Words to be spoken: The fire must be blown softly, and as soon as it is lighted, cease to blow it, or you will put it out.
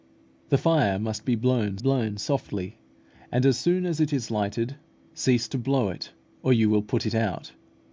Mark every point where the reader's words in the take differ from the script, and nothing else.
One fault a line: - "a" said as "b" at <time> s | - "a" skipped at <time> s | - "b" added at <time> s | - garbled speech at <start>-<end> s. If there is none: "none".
- "blown" added at 1.8 s